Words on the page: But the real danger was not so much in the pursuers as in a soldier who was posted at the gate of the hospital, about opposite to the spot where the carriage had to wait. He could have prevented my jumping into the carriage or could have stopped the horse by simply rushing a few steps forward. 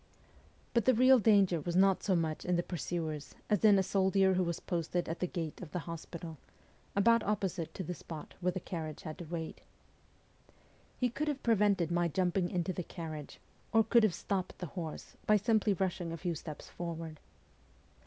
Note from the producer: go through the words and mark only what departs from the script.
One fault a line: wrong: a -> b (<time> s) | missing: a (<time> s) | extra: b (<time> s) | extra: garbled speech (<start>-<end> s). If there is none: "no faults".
no faults